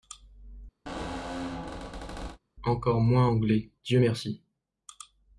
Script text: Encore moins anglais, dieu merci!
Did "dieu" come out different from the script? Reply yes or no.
no